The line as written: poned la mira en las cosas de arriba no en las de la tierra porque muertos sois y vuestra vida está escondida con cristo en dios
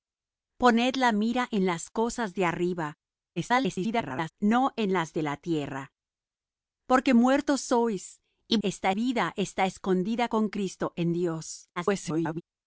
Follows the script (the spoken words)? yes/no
no